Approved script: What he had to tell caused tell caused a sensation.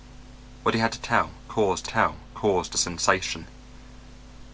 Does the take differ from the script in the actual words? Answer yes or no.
no